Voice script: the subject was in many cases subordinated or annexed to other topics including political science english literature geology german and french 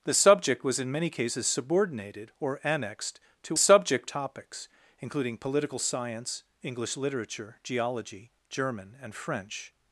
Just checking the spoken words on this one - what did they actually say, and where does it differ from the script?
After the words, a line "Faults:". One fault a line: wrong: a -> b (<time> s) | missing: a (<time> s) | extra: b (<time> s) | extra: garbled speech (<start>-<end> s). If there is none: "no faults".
the subject was in many cases subordinated or annexed to subject topics including political science english literature geology german and french
Faults:
wrong: other -> subject (3.6 s)